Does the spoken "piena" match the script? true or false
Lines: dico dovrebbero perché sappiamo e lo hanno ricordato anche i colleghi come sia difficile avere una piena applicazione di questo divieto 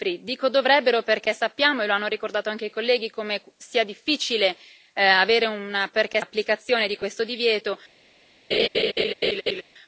false